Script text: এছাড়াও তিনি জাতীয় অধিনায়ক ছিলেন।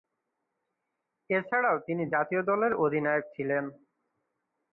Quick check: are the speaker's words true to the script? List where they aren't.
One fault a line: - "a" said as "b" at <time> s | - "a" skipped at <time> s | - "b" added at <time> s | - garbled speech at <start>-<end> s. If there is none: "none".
- "দলের" added at 2.5 s